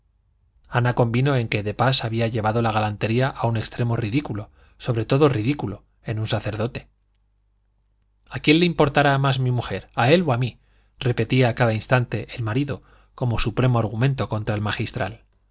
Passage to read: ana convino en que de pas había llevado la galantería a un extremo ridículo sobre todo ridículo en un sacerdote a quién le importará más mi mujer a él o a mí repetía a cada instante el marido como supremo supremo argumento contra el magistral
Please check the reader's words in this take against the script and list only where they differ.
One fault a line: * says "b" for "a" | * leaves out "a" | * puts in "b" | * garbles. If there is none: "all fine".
* leaves out "supremo"